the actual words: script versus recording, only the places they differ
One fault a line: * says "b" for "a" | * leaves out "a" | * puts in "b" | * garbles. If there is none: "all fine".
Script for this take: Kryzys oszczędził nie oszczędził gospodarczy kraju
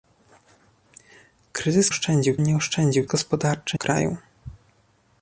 all fine